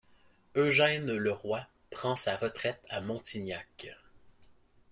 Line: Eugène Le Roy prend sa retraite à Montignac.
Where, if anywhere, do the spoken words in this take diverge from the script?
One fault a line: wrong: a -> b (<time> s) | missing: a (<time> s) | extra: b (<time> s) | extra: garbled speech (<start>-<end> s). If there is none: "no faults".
no faults